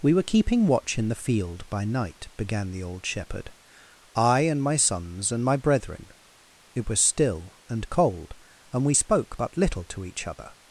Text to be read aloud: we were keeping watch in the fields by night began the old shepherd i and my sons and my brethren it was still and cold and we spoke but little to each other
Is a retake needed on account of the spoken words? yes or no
yes